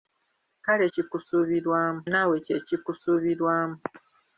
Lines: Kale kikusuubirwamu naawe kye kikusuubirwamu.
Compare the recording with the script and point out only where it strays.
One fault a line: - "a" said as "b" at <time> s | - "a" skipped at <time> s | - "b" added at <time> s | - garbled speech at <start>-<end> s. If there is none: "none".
none